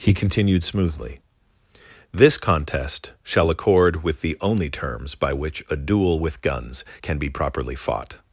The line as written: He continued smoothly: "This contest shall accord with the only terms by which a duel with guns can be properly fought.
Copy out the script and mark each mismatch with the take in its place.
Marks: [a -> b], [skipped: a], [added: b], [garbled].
He continued smoothly: "This contest shall accord with the only terms by which a duel with guns can be properly fought.